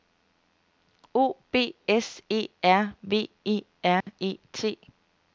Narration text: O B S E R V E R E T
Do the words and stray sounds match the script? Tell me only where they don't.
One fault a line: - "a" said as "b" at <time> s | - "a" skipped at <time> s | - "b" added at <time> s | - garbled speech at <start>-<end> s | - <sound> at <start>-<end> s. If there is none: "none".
- dropout at 4.0-4.1 s